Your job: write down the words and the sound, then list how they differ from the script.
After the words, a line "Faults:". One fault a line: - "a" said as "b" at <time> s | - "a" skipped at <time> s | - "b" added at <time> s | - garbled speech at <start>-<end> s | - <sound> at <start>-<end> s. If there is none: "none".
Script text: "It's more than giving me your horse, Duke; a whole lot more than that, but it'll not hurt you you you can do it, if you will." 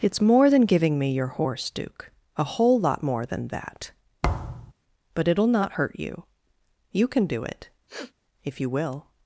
"It's more than giving me your horse, Duke; a whole lot more than that, but it'll not hurt you you can do it, if you will."
Faults:
- thud at 4.2-4.7 s
- "you" skipped at 7.1 s
- sniff at 7.9-8.1 s